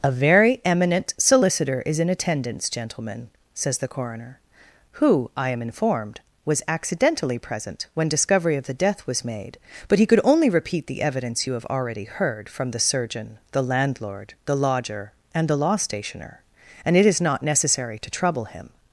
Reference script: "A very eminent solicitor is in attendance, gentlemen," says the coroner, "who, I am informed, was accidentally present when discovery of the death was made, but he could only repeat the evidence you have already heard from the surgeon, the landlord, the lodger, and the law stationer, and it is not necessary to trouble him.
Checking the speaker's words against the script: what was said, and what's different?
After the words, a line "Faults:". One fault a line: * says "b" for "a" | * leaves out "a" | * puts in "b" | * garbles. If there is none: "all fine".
"A very eminent solicitor is in attendance, gentlemen," says the coroner, "who, I am informed, was accidentally present when discovery of the death was made, but he could only repeat the evidence you have already heard from the surgeon, the landlord, the lodger, and the law stationer, and it is not necessary to trouble him.
Faults:
all fine